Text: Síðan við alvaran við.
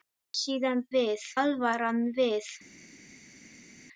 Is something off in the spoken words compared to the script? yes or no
no